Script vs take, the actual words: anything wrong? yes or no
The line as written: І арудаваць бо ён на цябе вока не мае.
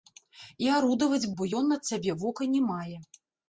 no